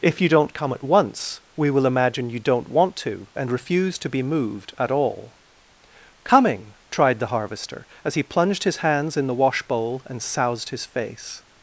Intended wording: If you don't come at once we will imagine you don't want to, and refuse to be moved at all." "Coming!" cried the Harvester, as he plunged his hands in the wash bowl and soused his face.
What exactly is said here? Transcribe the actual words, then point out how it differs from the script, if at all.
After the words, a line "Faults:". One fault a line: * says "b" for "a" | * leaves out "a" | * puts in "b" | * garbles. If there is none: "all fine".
If you don't come at once we will imagine you don't want to, and refuse to be moved at all." "Coming!" tried the Harvester, as he plunged his hands in the wash bowl and soused his face.
Faults:
* says "tried" for "cried"